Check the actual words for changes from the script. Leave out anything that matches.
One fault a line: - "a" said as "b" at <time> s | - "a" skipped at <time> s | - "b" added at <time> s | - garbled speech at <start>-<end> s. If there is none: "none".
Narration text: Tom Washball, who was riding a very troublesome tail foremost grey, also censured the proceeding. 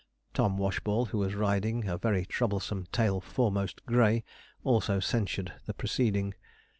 none